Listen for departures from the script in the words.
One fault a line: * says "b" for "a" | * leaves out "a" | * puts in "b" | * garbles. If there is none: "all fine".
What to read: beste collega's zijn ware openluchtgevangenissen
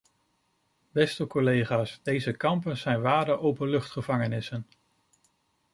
* puts in "deze kampen"